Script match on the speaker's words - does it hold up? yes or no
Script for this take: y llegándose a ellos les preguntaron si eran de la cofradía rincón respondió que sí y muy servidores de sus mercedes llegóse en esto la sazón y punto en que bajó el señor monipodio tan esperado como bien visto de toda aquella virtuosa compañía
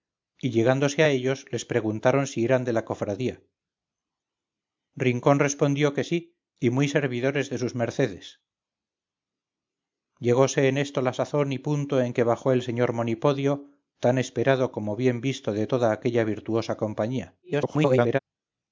no